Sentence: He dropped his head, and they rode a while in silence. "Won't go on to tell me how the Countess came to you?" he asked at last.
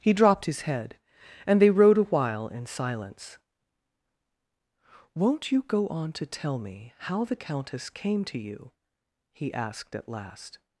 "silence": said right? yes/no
yes